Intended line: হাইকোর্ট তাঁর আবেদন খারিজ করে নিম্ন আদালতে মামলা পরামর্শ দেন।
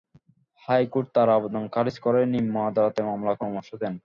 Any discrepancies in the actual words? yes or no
no